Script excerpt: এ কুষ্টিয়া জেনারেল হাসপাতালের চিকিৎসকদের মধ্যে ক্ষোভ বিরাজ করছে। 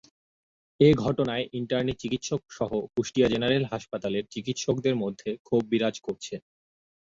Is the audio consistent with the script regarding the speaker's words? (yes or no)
no